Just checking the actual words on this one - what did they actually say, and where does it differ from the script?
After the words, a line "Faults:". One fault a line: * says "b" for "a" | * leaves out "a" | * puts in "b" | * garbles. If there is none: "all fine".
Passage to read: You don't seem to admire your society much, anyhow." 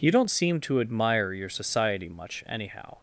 You don't seem to admire your society much, anyhow."
Faults:
all fine